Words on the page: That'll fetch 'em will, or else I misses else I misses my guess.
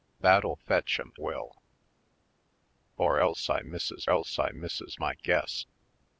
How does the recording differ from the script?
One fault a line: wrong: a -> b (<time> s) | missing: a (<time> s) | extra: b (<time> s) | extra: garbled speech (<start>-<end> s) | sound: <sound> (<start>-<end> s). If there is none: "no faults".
no faults